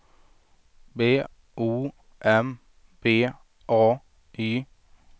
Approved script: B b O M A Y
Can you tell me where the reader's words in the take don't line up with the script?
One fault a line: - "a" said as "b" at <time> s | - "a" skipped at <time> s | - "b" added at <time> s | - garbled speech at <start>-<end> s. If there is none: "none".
- "b" skipped at 1.2 s
- "B" added at 3.0 s